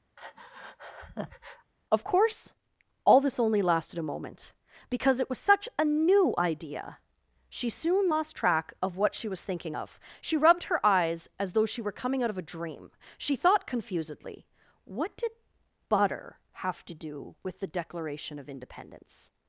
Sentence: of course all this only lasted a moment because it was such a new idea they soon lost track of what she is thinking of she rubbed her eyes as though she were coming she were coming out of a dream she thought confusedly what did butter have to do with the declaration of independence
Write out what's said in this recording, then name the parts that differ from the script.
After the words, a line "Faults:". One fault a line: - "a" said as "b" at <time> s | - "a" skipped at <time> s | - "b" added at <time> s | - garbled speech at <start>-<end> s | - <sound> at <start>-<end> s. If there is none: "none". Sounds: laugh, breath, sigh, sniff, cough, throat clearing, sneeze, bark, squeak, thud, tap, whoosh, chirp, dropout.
of course all this only lasted a moment because it was such a new idea she soon lost track of what she was thinking of she rubbed her eyes as though she were coming out of a dream she thought confusedly what did butter have to do with the declaration of independence
Faults:
- breath at 0.2-1.7 s
- "they" said as "she" at 7.5 s
- "is" said as "was" at 9.3 s
- "she were coming" skipped at 12.2 s